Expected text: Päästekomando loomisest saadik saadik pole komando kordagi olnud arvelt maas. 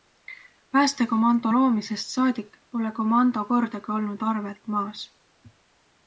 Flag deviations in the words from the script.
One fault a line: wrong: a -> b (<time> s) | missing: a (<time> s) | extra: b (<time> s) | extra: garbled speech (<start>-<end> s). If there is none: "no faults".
missing: saadik (2.6 s)